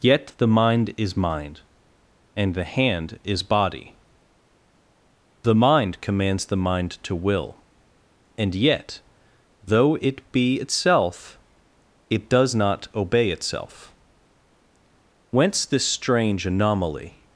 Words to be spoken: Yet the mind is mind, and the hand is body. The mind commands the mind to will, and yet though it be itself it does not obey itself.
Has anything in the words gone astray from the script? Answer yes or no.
yes